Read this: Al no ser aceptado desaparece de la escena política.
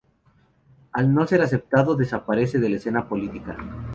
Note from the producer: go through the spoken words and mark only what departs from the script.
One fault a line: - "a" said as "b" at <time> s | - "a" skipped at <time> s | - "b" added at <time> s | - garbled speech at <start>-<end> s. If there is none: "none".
none